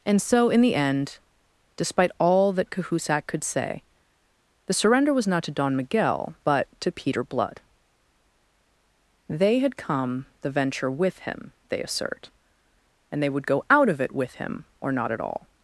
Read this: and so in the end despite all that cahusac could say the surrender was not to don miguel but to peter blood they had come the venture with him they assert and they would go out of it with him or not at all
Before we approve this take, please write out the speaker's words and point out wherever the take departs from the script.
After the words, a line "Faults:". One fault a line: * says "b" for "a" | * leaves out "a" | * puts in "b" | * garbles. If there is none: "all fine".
and so in the end despite all that cahusac could say the surrender was not to don miguel but to peter blood they had come the venture with him they assert and they would go out of it with him or not at all
Faults:
all fine